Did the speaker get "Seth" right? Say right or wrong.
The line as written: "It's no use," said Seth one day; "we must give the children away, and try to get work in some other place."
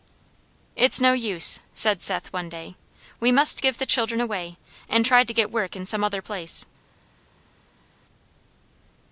right